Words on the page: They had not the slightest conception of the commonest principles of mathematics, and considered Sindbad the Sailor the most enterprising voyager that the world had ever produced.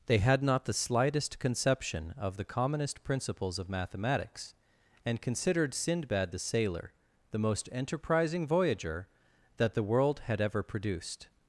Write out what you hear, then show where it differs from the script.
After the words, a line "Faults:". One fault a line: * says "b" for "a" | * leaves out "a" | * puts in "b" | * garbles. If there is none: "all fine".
They had not the slightest conception of the commonest principles of mathematics, and considered Sindbad the Sailor the most enterprising voyager that the world had ever produced.
Faults:
all fine